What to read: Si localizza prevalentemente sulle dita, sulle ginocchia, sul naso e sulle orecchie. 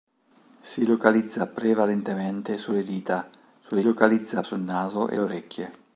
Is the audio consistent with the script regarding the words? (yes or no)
no